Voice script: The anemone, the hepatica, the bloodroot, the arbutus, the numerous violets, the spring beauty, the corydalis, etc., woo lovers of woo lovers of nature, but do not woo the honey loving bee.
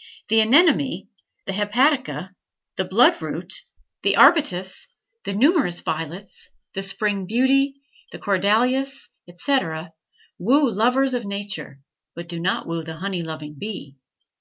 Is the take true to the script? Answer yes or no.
no